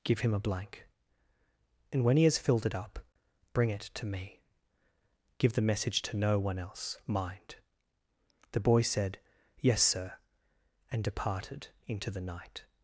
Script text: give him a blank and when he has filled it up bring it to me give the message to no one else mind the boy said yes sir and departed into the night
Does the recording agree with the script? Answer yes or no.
yes